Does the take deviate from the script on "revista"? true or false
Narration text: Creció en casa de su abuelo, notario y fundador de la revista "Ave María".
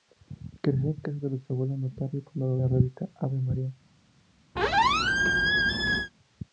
false